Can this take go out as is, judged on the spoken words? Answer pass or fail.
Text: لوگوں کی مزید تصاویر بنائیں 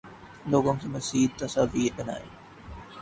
pass